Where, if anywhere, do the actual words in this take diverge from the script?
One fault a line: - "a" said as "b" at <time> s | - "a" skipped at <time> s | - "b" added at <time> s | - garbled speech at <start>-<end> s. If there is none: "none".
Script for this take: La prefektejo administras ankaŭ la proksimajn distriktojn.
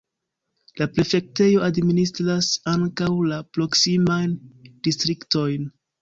none